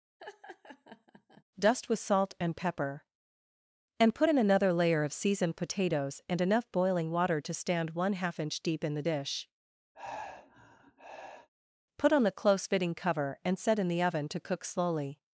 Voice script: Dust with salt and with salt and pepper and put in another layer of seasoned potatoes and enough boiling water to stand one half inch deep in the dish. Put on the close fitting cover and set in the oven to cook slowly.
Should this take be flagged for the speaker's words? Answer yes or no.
yes